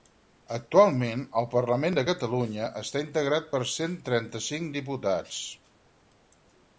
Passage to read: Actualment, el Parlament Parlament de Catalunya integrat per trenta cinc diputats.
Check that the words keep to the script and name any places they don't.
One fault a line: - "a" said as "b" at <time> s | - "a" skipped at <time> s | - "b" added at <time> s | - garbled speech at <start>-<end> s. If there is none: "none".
- "Parlament" skipped at 2.0 s
- "està" added at 2.8 s
- "cent" added at 3.8 s